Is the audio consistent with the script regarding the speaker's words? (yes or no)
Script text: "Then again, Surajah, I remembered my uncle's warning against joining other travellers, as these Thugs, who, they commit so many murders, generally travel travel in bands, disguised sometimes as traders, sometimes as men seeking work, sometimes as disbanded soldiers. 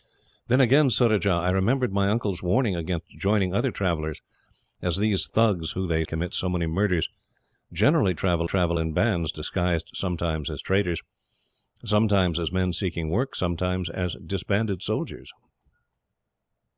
yes